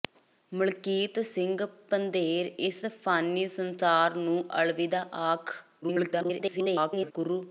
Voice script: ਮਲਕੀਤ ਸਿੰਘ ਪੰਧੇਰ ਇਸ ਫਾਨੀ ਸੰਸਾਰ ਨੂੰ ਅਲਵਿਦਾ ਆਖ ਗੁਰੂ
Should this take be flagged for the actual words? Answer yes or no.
yes